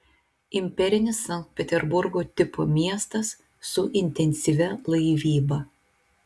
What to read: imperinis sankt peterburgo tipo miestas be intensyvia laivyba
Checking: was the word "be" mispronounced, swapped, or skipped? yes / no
yes